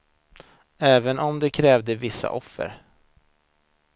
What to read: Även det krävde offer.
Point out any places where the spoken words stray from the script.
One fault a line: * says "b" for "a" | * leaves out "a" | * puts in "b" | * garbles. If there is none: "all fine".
* puts in "om"
* puts in "vissa"